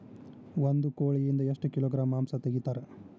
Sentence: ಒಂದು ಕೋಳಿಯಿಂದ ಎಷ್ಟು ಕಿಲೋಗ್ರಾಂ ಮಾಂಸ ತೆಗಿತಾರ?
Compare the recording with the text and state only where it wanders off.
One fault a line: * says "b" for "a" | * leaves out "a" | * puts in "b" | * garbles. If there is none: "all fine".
all fine